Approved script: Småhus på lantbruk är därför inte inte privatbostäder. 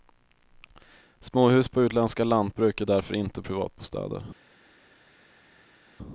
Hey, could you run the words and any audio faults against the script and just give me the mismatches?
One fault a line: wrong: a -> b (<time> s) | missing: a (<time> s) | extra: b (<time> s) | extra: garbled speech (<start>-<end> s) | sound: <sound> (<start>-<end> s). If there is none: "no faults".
extra: utländska (1.8 s)
missing: inte (3.4 s)